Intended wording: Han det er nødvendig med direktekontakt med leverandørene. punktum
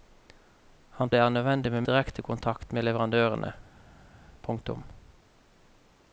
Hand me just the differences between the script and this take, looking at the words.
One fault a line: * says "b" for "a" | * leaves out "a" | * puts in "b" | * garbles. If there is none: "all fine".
all fine